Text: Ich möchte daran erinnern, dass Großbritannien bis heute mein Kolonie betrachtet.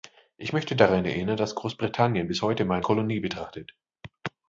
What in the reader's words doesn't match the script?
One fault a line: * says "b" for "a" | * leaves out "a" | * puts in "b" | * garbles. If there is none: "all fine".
all fine